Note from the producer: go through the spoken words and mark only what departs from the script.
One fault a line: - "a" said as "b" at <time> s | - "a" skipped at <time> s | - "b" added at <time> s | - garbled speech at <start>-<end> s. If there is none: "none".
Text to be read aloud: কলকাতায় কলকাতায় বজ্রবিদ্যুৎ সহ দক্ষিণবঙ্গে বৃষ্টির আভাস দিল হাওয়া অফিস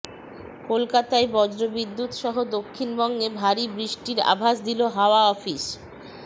- "কলকাতায়" skipped at 1.3 s
- "ভারী" added at 3.4 s